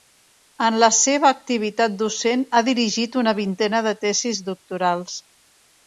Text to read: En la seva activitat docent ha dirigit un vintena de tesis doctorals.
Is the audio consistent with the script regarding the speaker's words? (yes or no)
no